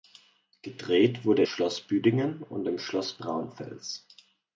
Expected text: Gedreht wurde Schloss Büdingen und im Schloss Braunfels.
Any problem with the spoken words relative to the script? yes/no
no